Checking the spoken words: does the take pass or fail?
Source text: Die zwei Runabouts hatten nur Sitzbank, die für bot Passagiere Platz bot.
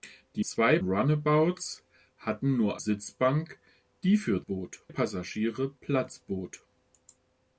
pass